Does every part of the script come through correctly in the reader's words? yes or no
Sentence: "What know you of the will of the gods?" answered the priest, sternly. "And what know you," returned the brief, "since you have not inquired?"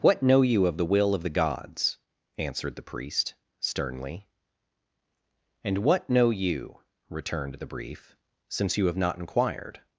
yes